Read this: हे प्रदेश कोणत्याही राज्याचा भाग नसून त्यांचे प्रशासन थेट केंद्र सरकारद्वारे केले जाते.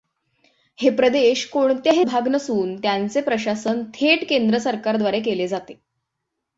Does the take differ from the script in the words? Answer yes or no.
yes